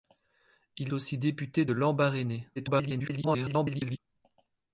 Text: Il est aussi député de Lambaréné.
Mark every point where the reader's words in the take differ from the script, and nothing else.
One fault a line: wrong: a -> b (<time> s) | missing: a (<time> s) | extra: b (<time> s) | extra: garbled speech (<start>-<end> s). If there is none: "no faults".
missing: est (0.9 s)
extra: garbled speech (2.6-4.0 s)